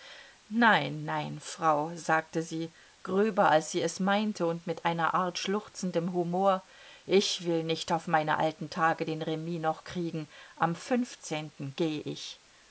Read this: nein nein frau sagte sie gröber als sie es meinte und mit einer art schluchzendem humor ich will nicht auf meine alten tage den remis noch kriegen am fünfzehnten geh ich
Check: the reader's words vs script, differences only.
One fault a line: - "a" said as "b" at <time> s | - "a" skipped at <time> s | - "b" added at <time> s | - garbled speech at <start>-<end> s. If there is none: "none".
none